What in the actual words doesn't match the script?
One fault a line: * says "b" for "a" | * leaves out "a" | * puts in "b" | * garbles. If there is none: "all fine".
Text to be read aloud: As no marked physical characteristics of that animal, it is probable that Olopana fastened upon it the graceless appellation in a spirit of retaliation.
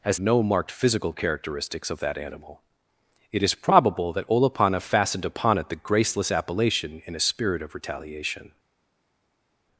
all fine